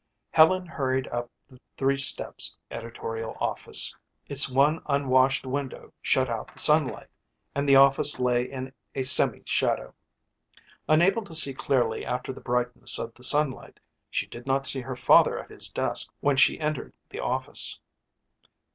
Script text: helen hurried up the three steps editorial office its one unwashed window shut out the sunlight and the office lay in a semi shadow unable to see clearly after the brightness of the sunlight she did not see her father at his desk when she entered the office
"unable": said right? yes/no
yes